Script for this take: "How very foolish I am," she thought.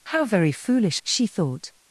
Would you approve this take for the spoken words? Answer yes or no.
no